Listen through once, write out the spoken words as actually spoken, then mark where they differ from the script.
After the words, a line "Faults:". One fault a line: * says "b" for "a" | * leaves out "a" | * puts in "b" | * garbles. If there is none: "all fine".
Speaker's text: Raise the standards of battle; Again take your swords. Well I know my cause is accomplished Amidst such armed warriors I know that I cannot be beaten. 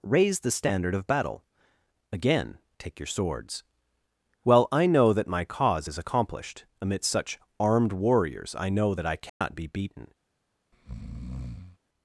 Raise the standard of battle; Again take your swords. Well I know that my cause is accomplished Amidst such armed warriors I know that I cannot be beaten.
Faults:
* says "standard" for "standards"
* puts in "that"